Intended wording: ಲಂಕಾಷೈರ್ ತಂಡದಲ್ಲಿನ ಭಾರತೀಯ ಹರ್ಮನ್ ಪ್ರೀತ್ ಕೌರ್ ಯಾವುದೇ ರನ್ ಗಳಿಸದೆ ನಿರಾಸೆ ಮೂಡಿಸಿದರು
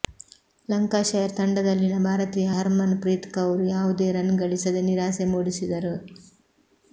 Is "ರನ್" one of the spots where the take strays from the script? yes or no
no